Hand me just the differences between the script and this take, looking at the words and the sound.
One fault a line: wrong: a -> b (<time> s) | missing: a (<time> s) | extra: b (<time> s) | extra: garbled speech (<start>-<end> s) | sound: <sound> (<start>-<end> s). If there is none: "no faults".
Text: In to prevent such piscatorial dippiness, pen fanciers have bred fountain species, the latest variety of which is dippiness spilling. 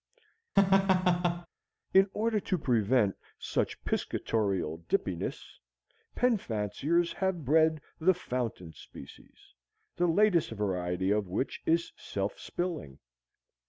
sound: laugh (0.6-1.5 s)
extra: order (2.1 s)
extra: the (8.0 s)
wrong: dippiness -> self (12.0 s)